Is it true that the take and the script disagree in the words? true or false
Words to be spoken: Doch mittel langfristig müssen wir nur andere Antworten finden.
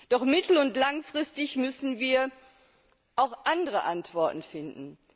true